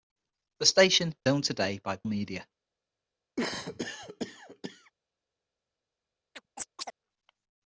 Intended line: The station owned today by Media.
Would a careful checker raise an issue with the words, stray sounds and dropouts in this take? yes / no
yes